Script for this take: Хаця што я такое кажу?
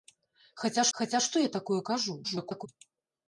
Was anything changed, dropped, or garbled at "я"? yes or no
no